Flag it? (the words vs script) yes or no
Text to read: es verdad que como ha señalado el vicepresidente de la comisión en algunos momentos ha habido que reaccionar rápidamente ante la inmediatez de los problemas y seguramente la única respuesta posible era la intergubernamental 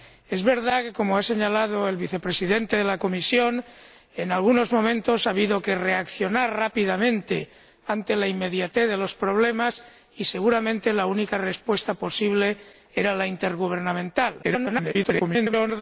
yes